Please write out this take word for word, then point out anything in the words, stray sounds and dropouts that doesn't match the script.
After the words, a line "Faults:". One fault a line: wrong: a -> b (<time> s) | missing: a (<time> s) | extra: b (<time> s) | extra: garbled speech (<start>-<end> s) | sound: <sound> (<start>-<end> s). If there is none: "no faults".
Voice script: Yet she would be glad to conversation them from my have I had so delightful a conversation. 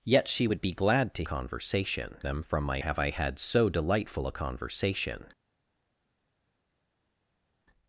Yet she would be glad to conversation them from my have I had so delightful a conversation.
Faults:
no faults